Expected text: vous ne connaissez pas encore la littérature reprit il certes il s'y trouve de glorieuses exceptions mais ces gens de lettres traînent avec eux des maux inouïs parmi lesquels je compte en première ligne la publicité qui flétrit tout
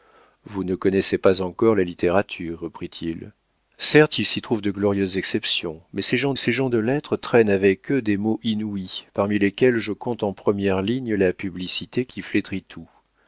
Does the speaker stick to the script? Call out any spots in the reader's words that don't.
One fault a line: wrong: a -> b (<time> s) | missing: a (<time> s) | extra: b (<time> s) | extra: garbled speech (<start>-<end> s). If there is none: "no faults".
extra: ces gens (6.4 s)